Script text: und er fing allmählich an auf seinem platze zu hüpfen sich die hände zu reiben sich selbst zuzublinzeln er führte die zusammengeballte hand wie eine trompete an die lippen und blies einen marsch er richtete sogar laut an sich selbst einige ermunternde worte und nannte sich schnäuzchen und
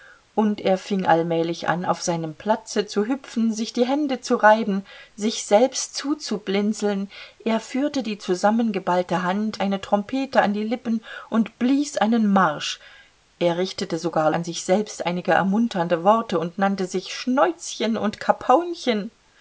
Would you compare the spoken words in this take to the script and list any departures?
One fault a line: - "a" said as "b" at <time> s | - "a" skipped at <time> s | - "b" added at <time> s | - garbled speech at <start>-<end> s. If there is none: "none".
- "wie" skipped at 9.6 s
- "laut" skipped at 14.3 s